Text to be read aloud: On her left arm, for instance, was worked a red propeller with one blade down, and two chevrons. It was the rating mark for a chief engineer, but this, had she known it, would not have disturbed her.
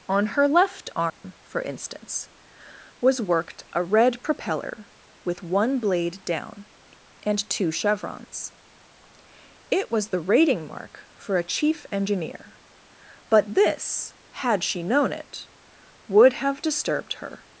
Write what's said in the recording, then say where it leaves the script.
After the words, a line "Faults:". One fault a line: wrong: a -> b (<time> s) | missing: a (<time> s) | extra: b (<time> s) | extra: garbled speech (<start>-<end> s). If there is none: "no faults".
On her left arm, for instance, was worked a red propeller with one blade down, and two chevrons. It was the rating mark for a chief engineer, but this, had she known it, would have disturbed her.
Faults:
missing: not (16.3 s)